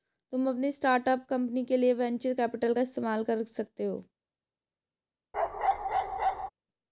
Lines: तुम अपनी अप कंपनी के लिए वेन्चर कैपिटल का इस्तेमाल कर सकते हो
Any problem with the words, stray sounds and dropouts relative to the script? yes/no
yes